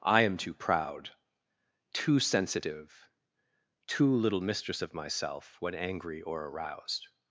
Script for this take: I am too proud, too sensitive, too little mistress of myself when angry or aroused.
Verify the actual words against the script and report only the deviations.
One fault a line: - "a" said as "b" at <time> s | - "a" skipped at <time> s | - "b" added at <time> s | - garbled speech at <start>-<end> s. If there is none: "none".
none